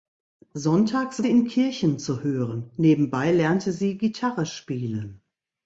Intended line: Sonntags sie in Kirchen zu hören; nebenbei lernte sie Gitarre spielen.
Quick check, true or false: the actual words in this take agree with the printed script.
true